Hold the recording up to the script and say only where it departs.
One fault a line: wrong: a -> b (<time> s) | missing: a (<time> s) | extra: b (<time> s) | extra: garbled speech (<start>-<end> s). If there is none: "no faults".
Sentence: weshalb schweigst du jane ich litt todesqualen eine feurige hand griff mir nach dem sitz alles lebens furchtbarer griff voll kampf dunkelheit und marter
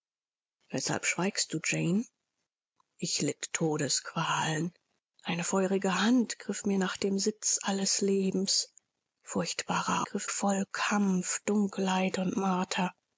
no faults